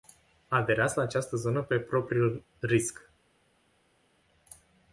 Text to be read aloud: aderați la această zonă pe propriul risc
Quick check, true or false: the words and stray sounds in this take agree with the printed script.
true